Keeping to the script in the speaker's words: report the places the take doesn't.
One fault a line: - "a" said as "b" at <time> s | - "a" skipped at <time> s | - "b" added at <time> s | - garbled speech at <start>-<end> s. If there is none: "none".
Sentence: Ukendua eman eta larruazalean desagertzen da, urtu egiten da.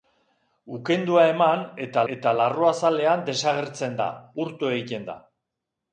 - "eta" added at 2.1 s